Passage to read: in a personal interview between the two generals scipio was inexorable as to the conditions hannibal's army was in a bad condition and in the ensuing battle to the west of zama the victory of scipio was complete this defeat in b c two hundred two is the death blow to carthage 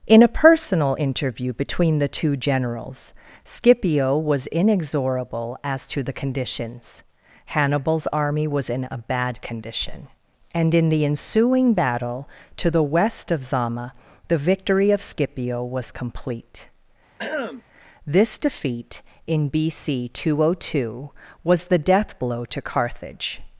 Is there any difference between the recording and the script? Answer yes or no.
yes